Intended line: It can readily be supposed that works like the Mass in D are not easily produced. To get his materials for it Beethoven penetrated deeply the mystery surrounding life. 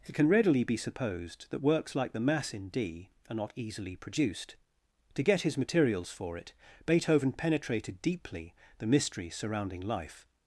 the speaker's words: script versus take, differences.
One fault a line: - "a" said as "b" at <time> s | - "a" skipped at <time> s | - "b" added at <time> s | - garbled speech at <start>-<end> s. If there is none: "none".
none